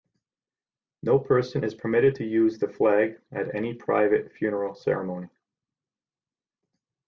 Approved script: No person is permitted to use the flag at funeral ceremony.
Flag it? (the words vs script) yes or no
yes